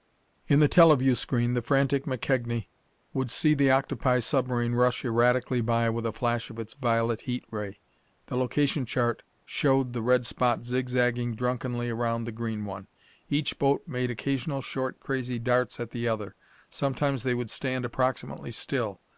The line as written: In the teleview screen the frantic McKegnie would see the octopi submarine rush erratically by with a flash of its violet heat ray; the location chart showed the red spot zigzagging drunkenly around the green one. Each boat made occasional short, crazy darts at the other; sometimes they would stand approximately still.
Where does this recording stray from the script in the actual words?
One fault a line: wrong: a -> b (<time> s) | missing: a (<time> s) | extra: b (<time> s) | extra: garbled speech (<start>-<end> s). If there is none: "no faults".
no faults